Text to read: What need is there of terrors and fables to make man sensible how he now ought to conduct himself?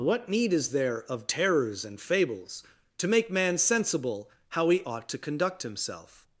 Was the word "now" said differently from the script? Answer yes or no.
yes